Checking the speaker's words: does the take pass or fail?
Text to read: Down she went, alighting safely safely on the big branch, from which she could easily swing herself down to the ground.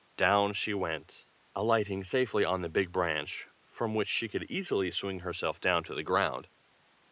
fail